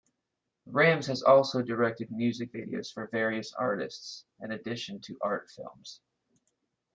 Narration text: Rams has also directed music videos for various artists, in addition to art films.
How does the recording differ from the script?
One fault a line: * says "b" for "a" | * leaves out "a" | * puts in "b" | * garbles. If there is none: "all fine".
all fine